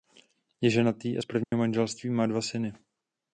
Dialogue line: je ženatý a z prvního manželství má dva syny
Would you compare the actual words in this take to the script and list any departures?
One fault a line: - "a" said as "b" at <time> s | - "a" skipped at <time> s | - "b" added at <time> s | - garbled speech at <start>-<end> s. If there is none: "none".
none